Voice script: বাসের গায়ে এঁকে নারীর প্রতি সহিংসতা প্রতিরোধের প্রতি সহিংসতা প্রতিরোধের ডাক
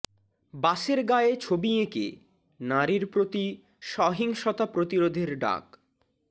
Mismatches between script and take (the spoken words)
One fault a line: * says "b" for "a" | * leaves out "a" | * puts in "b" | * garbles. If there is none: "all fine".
* puts in "ছবি"
* leaves out "প্রতি সহিংসতা প্রতিরোধের"